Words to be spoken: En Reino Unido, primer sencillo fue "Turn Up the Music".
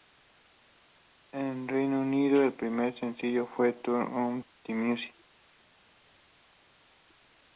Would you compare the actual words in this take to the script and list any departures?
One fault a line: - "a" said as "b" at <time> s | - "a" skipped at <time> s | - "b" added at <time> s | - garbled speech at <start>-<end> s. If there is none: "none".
- "el" added at 2.4 s